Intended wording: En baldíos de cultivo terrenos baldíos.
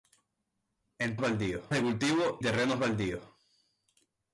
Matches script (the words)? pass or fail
pass